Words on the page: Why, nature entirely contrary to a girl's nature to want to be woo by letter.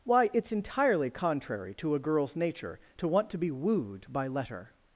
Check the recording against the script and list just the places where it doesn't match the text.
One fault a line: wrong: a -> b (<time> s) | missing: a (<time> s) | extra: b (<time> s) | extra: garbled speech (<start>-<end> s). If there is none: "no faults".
wrong: nature -> it's (0.3 s)
wrong: woo -> wooed (3.5 s)